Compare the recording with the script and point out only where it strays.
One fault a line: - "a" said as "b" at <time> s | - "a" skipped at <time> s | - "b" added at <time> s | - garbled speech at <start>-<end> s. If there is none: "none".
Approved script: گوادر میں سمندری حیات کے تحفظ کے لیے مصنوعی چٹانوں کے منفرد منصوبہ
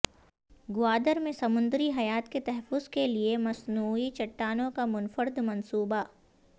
- "کے" said as "کا" at 4.7 s